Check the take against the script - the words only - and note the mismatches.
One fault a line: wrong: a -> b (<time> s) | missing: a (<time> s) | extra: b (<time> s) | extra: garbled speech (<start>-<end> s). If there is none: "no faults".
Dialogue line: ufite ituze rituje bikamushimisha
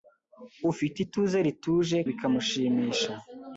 no faults